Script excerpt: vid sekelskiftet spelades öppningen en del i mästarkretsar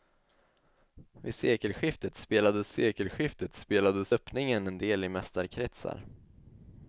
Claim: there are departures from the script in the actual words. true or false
true